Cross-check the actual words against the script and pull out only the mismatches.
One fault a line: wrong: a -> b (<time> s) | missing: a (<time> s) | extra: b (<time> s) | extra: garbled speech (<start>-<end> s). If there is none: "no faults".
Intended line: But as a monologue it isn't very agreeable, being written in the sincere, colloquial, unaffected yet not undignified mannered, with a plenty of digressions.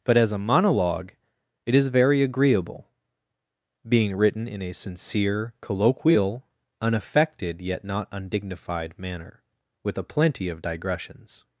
wrong: isn't -> is (1.8 s)
wrong: the -> a (4.6 s)
wrong: mannered -> manner (9.0 s)